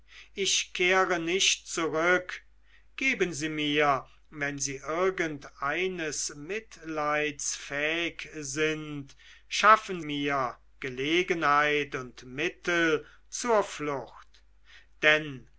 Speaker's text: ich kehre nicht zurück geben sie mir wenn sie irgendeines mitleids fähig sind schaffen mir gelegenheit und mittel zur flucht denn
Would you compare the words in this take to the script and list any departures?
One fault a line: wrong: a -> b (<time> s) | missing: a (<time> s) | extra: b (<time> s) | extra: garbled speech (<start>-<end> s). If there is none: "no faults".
no faults